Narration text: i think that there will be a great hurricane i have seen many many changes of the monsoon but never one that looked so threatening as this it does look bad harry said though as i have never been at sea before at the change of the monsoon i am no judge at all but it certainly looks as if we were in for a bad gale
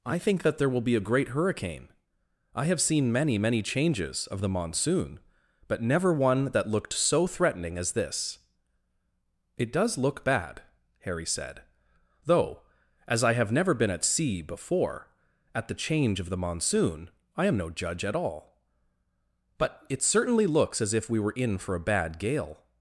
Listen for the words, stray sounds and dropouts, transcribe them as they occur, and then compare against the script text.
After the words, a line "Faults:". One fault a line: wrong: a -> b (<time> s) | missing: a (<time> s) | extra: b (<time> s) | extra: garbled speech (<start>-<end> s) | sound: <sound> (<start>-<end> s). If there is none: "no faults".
i think that there will be a great hurricane i have seen many many changes of the monsoon but never one that looked so threatening as this it does look bad harry said though as i have never been at sea before at the change of the monsoon i am no judge at all but it certainly looks as if we were in for a bad gale
Faults:
no faults